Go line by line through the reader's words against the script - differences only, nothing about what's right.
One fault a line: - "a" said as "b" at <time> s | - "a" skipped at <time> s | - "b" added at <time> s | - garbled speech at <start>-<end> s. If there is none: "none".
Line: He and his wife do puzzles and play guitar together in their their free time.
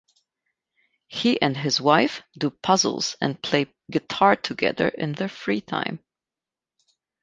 - "their" skipped at 5.3 s